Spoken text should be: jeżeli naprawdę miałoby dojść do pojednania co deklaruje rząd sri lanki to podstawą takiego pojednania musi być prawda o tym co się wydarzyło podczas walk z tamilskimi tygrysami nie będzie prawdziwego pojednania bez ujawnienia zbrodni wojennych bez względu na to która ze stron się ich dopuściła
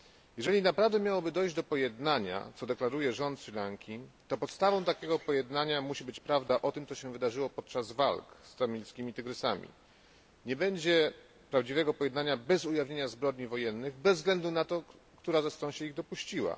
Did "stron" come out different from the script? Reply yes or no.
no